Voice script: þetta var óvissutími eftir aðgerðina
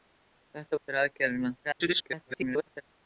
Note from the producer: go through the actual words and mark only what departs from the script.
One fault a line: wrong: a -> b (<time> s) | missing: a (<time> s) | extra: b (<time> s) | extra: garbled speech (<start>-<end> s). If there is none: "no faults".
missing: var óvissutími (0.8 s)
extra: garbled speech (1.6-2.8 s)